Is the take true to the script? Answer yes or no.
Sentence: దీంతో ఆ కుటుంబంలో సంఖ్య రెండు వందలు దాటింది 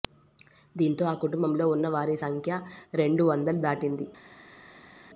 no